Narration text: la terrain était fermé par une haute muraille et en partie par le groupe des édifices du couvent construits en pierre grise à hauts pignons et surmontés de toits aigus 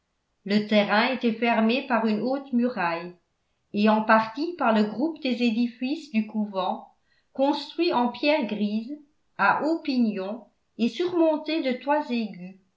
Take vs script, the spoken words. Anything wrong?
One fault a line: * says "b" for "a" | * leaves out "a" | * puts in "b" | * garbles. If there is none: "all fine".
* says "le" for "la"